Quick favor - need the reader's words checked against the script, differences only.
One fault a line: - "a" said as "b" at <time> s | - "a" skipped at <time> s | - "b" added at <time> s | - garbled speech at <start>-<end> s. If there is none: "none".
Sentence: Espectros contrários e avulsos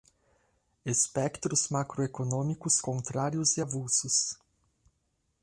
- "macroeconômicos" added at 1.7 s